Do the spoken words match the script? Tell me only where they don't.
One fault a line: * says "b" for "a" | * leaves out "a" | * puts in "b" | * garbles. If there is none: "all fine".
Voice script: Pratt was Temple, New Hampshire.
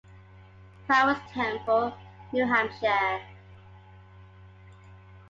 all fine